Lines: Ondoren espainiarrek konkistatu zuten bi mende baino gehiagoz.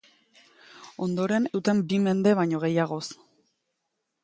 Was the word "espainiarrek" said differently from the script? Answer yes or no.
yes